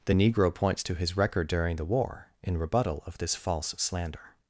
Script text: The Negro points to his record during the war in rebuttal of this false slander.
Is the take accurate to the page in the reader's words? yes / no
yes